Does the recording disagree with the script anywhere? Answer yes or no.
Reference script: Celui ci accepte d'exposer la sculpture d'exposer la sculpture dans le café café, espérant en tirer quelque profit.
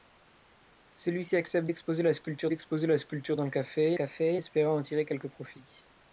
no